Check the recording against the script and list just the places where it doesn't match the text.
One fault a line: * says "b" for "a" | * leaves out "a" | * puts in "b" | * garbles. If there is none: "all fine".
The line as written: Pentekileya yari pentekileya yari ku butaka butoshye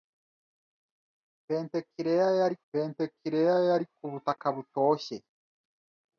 all fine